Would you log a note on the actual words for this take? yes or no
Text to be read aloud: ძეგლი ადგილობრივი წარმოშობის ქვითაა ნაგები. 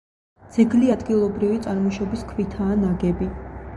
no